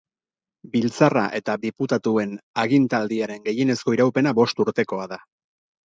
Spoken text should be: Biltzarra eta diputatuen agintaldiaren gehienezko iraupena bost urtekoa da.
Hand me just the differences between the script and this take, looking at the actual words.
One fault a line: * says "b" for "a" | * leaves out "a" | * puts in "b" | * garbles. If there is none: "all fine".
all fine